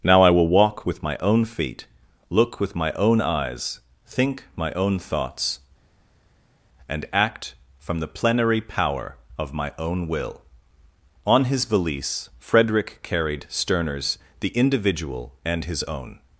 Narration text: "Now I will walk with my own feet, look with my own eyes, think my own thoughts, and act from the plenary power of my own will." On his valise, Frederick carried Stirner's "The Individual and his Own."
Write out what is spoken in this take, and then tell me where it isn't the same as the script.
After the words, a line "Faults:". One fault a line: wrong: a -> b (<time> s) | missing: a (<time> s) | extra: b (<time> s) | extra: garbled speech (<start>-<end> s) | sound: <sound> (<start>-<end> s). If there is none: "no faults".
"Now I will walk with my own feet, look with my own eyes, think my own thoughts, and act from the plenary power of my own will." On his valise, Frederick carried Stirner's "The Individual and his Own."
Faults:
no faults